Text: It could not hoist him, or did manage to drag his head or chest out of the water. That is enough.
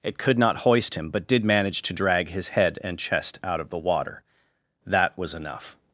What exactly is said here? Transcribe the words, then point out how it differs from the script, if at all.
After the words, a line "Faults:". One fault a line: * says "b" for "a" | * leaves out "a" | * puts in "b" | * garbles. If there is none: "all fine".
It could not hoist him, but did manage to drag his head and chest out of the water. That was enough.
Faults:
* says "but" for "or"
* says "and" for "or"
* says "was" for "is"